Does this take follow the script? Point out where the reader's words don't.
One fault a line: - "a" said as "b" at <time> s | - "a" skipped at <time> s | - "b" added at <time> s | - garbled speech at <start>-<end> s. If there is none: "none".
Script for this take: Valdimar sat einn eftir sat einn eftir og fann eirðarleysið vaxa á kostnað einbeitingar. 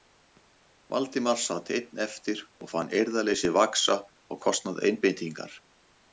- "sat einn eftir" skipped at 2.4 s